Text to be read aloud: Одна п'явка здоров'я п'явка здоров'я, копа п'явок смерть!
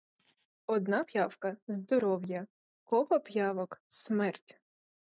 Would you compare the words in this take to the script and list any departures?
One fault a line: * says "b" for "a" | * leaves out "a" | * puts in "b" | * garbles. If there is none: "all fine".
* leaves out "п'явка здоров'я"